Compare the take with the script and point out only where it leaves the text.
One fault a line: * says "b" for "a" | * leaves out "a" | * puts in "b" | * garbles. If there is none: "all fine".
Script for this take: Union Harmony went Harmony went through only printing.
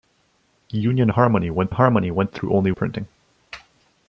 all fine